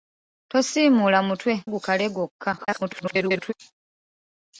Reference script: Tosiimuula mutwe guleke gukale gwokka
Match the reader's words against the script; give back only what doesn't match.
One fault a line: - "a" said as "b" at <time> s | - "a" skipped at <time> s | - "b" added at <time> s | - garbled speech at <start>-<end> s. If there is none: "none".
- "guleke" skipped at 1.5 s
- garbled speech at 2.6-3.5 s